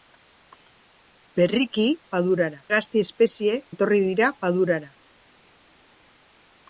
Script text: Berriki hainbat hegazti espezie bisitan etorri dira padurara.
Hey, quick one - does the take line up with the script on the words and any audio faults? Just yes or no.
no